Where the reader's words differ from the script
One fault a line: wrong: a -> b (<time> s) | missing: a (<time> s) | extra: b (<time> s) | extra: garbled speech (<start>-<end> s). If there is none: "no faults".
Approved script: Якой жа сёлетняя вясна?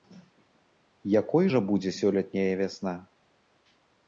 extra: будзе (1.7 s)